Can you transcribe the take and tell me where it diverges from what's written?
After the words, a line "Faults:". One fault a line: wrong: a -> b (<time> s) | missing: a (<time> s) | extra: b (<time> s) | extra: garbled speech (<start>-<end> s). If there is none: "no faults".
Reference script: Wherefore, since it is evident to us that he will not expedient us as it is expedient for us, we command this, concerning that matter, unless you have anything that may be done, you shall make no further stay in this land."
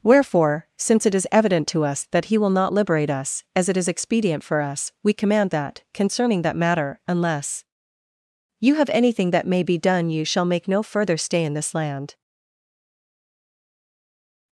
Wherefore, since it is evident to us that he will not liberate us as it is expedient for us, we command that, concerning that matter, unless you have anything that may be done, you shall make no further stay in this land."
Faults:
wrong: expedient -> liberate (2.7 s)
wrong: this -> that (5.5 s)